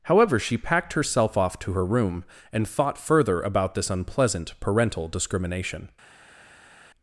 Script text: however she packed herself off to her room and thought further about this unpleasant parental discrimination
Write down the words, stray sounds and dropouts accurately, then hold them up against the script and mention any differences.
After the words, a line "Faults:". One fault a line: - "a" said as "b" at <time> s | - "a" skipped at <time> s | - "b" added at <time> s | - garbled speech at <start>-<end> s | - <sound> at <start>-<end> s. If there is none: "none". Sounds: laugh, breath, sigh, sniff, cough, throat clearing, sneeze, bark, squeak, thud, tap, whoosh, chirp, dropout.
however she packed herself off to her room and thought further about this unpleasant parental discrimination
Faults:
none